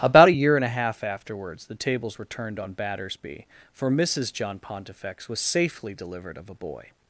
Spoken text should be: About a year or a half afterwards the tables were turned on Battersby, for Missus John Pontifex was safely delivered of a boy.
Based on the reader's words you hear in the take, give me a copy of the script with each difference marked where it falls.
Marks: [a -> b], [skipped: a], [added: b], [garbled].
About a year [or -> and] a half afterwards the tables were turned on Battersby, for Missus John Pontifex was safely delivered of a boy.